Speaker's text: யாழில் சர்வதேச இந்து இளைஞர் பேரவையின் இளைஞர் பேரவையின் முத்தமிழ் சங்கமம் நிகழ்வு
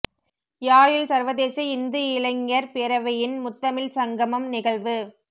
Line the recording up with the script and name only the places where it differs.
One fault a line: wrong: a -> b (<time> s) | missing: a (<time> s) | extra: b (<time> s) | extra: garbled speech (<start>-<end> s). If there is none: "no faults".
missing: இளைஞர் பேரவையின் (3.3 s)